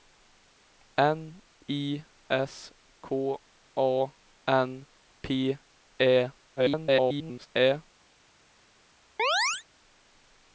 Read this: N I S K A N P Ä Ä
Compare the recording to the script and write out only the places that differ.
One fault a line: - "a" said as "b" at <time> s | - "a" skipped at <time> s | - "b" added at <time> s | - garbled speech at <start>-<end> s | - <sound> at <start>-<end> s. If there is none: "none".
- garbled speech at 6.6-7.5 s
- chirp at 9.2-9.6 s